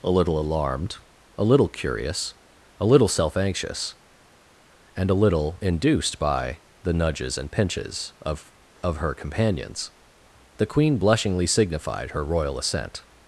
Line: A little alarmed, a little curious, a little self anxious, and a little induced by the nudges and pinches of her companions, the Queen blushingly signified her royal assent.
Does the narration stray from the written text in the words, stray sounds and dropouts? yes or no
yes